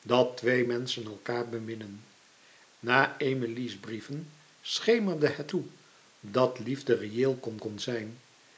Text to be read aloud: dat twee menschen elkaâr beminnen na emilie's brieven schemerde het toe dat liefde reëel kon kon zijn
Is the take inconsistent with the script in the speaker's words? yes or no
no